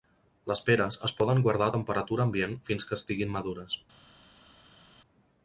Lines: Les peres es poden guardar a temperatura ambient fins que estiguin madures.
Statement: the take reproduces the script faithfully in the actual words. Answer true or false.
true